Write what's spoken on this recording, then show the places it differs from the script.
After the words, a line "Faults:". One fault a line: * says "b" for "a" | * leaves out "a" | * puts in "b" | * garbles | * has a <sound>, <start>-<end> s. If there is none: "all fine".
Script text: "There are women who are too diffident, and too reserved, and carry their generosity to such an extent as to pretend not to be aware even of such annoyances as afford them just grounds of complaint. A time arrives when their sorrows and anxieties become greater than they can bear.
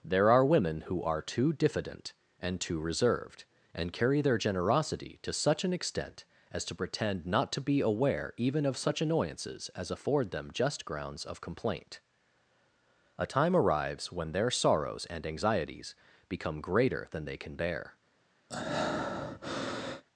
"There are women who are too diffident, and too reserved, and carry their generosity to such an extent as to pretend not to be aware even of such annoyances as afford them just grounds of complaint. A time arrives when their sorrows and anxieties become greater than they can bear.
Faults:
* has a breath, 18.5-20.0 s